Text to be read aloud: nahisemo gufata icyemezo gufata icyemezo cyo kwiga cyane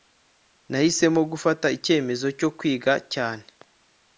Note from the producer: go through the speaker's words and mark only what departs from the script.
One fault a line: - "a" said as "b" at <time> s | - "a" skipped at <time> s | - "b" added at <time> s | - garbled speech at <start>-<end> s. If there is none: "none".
- "gufata icyemezo" skipped at 2.3 s